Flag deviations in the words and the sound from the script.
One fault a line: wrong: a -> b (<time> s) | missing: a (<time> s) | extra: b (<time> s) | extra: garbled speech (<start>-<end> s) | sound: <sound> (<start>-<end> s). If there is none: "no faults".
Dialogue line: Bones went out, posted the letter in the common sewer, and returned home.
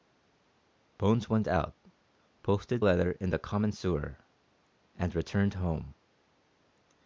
missing: the (2.8 s)